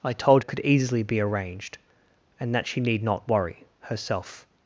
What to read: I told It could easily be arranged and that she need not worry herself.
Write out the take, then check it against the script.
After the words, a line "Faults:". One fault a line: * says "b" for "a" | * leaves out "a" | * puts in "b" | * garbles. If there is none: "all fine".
I told It could easily be arranged and that she need not worry herself.
Faults:
all fine